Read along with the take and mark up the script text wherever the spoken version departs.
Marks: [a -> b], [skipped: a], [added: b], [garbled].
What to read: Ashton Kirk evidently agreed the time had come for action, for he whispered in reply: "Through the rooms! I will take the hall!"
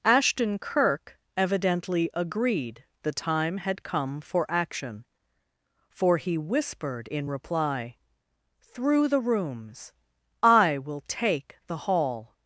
Ashton Kirk evidently agreed the time had come for action, for he whispered in reply: "Through the rooms! I will take the hall!"